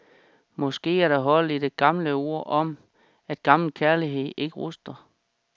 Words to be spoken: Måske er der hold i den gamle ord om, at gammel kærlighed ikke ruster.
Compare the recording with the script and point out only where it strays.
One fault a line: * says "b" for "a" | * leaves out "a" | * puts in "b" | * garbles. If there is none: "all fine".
* says "det" for "den"